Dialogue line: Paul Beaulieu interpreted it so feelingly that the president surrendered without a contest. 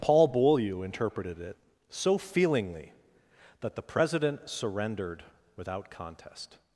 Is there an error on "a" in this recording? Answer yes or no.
yes